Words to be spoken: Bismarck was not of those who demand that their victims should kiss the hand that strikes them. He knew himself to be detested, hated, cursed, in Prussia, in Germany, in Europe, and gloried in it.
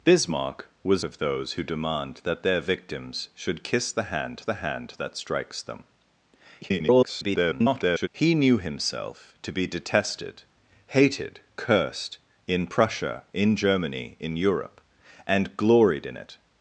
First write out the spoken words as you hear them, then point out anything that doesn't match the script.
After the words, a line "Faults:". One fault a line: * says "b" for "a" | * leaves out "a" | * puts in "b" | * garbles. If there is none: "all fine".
Bismarck was of those who demand that their victims should kiss the hand the hand that strikes them. [garbled] He knew himself to be detested, hated, cursed, in Prussia, in Germany, in Europe, and gloried in it.
Faults:
* leaves out "not"
* puts in "the hand"
* garbles